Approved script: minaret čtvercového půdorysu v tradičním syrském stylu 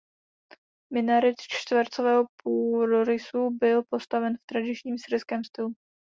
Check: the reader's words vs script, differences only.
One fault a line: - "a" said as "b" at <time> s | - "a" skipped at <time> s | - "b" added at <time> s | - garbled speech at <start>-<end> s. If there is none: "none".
- "byl postaven" added at 3.6 s